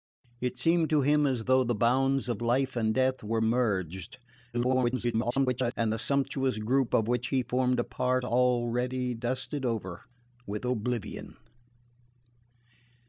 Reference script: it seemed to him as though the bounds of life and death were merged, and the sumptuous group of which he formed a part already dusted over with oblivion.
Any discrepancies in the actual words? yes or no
yes